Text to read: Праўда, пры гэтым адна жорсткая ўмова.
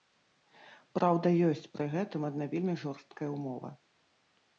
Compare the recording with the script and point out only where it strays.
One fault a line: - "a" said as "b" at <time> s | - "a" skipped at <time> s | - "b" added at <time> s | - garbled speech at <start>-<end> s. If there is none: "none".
- "ёсць" added at 1.5 s
- "вельмі" added at 2.5 s